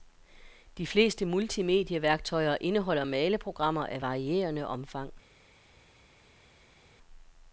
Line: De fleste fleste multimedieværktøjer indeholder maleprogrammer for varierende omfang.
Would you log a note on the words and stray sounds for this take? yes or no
yes